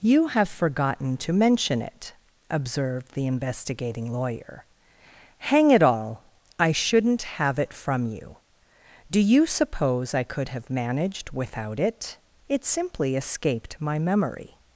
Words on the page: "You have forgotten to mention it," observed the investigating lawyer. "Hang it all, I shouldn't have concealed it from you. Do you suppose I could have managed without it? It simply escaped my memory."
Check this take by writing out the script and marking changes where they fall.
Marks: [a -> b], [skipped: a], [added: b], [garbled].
"You have forgotten to mention it," observed the investigating lawyer. "Hang it all, I shouldn't have [skipped: concealed] it from you. Do you suppose I could have managed without it? It simply escaped my memory."